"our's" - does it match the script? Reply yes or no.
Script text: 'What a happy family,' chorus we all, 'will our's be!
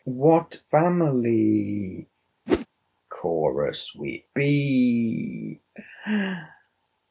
no